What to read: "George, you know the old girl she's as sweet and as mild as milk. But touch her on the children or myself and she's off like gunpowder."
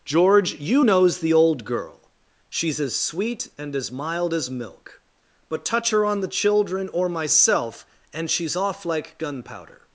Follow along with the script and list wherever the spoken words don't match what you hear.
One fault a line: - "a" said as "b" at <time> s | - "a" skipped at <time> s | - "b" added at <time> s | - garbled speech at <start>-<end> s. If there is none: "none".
- "know" said as "knows" at 0.8 s